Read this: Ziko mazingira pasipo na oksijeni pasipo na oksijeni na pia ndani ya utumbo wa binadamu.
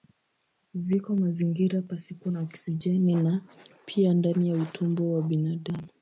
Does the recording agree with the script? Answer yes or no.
no